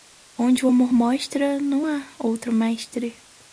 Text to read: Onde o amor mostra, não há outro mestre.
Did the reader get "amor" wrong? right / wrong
right